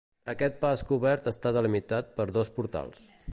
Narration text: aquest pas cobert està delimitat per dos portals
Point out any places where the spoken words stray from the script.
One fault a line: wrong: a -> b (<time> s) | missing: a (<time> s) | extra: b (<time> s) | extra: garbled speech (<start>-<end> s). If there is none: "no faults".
no faults